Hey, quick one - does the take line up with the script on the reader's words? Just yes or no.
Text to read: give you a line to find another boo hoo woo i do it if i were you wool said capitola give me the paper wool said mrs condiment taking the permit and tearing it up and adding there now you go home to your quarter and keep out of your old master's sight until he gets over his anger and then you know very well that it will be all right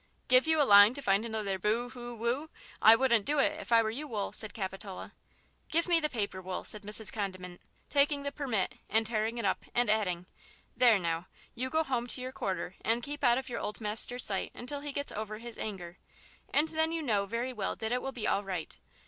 no